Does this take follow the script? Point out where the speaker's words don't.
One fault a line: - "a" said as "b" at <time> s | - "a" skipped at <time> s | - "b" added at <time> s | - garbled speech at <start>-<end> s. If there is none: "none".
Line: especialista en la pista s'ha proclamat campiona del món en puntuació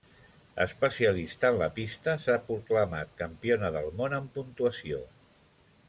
none